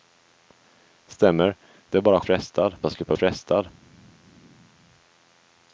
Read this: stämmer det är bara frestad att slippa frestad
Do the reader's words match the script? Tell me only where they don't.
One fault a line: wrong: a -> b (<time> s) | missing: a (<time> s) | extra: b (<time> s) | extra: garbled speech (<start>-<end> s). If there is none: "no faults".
no faults